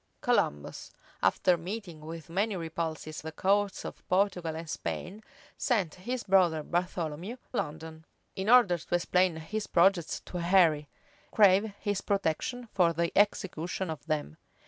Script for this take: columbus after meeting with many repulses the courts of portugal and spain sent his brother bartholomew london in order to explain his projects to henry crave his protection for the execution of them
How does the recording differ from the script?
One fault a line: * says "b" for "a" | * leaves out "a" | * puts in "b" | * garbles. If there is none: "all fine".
all fine